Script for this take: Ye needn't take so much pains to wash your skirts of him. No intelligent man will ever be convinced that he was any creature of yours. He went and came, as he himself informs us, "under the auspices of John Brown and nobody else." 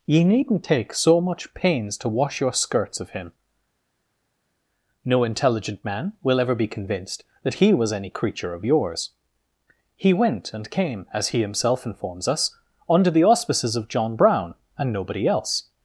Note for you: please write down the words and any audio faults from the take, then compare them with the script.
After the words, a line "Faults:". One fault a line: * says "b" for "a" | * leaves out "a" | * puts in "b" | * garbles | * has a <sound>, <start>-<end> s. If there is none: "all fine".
Ye needn't take so much pains to wash your skirts of him. No intelligent man will ever be convinced that he was any creature of yours. He went and came, as he himself informs us, "under the auspices of John Brown and nobody else."
Faults:
all fine